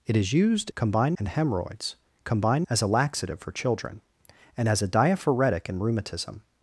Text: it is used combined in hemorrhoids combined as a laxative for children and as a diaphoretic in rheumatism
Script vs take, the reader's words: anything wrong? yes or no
no